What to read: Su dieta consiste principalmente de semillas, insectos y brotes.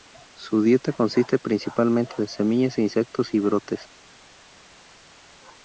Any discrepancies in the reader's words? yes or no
no